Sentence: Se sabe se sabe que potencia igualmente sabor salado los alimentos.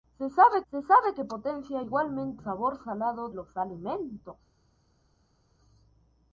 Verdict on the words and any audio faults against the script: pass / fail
pass